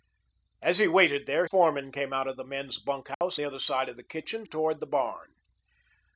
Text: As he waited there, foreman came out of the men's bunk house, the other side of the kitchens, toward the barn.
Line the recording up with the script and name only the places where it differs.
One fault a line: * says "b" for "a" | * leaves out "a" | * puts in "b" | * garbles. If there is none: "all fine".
all fine